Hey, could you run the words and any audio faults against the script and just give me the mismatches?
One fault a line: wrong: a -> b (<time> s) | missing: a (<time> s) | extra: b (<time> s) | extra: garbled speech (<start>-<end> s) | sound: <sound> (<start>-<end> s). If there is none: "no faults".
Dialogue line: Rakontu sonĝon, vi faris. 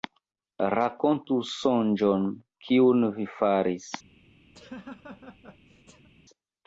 extra: kiun (2.7 s)
sound: laugh (4.5-6.1 s)